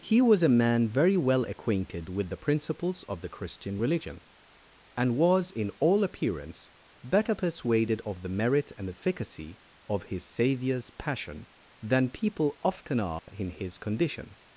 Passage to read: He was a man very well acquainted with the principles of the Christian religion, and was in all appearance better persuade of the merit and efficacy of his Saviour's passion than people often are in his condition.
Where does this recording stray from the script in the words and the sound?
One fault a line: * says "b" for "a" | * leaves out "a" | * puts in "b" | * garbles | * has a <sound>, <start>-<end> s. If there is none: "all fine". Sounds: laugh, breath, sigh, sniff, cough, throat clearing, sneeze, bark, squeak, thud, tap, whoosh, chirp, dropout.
* says "persuaded" for "persuade"
* has a dropout, 13.2-13.3 s